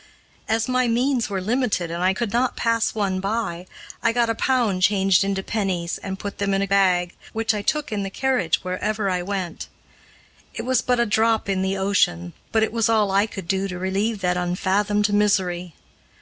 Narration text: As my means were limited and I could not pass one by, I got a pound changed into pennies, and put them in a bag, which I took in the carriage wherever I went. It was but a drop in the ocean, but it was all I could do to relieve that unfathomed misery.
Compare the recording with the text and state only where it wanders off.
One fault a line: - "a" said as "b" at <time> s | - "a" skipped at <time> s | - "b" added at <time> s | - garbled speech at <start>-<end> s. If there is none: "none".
none